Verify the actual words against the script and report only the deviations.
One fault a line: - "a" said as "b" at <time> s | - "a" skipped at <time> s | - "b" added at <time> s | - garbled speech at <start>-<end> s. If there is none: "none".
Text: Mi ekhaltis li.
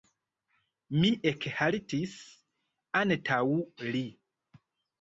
- "antaŭ" added at 3.0 s